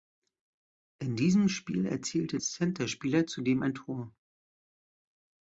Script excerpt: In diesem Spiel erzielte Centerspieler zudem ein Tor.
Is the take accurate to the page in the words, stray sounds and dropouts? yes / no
yes